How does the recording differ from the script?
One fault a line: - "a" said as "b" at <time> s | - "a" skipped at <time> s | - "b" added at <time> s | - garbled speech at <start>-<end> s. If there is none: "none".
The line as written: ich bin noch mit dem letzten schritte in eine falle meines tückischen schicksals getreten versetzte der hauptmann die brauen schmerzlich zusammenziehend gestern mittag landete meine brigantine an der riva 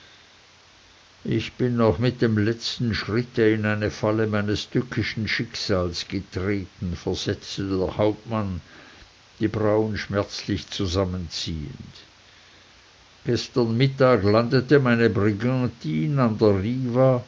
none